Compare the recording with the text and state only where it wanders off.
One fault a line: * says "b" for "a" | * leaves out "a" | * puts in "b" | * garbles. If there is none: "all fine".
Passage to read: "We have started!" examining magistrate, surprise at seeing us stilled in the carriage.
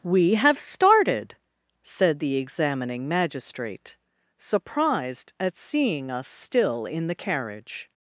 * puts in "said the"
* says "surprised" for "surprise"
* says "still" for "stilled"